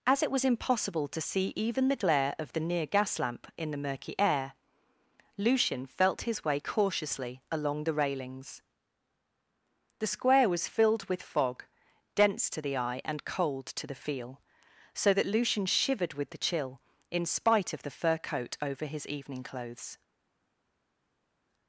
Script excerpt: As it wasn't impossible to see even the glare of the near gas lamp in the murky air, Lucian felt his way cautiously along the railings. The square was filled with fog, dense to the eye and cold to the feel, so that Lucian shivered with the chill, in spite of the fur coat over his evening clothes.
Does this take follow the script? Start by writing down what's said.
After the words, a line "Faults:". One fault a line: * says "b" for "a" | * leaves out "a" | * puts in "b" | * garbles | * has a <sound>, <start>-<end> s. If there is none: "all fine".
As it was impossible to see even the glare of the near gas lamp in the murky air, Lucian felt his way cautiously along the railings. The square was filled with fog, dense to the eye and cold to the feel, so that Lucian shivered with the chill, in spite of the fur coat over his evening clothes.
Faults:
* says "was" for "wasn't"